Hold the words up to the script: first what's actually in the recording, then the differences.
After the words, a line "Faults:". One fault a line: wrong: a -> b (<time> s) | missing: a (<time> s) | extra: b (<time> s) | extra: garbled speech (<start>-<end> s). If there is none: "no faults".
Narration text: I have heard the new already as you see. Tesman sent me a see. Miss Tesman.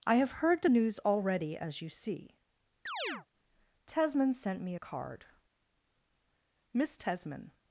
I have heard the news already as you see. Tesman sent me a card. Miss Tesman.
Faults:
wrong: new -> news (0.7 s)
wrong: see -> card (4.8 s)